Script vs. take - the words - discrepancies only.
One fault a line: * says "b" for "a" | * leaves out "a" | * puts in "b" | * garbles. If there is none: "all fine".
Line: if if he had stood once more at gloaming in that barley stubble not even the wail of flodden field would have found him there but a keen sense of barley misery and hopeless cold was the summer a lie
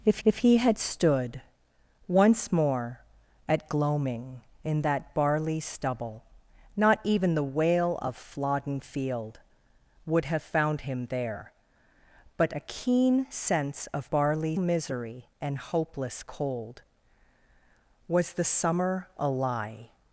all fine